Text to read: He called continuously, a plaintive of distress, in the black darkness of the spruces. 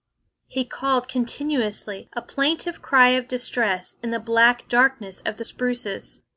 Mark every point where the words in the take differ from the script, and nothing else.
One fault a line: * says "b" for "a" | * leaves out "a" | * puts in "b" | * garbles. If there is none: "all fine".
* puts in "cry"